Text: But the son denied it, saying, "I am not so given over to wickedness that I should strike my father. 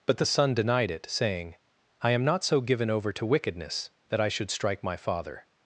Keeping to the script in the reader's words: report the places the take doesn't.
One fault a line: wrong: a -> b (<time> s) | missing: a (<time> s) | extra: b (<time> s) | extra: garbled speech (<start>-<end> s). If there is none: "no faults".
no faults